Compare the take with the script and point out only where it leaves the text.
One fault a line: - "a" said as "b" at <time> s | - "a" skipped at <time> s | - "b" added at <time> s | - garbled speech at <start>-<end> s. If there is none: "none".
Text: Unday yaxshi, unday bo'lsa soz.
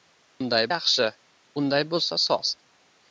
none